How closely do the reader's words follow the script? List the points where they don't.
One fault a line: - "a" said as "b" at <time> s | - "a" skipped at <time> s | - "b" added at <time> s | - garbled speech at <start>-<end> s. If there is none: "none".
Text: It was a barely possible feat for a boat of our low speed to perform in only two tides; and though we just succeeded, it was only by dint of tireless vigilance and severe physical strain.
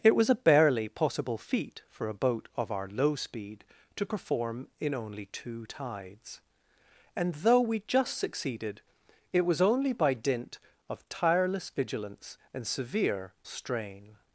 - "physical" skipped at 13.3 s